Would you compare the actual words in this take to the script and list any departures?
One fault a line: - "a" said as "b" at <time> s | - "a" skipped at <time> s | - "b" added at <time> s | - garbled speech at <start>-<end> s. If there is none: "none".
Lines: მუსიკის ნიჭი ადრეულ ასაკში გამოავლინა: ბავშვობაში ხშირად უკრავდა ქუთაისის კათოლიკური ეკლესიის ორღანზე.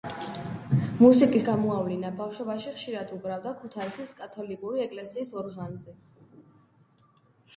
- "ნიჭი ადრეულ ასაკში" skipped at 1.4 s